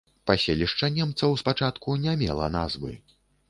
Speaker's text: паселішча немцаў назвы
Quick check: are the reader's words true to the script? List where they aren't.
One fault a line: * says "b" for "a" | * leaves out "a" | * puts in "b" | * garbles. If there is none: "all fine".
* puts in "спачатку не мела"